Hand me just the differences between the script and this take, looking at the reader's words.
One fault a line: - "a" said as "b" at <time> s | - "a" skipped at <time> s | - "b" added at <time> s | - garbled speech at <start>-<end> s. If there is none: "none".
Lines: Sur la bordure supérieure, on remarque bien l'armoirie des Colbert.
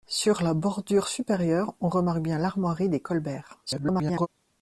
- garbled speech at 3.7-4.3 s